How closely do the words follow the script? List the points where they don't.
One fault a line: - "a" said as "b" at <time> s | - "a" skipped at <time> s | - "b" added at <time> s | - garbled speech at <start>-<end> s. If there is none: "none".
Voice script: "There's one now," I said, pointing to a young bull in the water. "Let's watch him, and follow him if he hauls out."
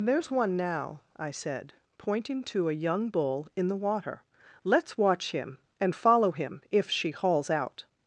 - "he" said as "she" at 6.9 s